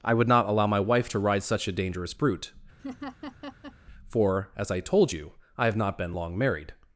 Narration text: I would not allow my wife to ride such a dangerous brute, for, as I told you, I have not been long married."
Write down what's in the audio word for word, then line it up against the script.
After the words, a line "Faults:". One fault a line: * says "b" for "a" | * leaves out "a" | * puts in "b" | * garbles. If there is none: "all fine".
I would not allow my wife to ride such a dangerous brute, for, as I told you, I have not been long married."
Faults:
all fine